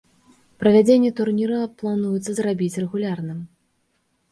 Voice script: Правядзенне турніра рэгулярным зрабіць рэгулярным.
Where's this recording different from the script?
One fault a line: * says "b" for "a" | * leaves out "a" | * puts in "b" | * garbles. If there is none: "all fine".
* says "плануецца" for "рэгулярным"